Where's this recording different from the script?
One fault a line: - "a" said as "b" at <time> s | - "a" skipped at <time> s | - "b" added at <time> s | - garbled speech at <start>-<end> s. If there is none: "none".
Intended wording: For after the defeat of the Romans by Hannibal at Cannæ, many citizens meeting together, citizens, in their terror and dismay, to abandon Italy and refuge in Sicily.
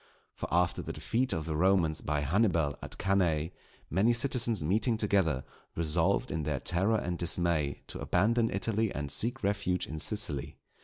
- "citizens" said as "resolved" at 5.8 s
- "seek" added at 9.1 s